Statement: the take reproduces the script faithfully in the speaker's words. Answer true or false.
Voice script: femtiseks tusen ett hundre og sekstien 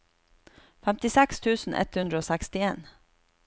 true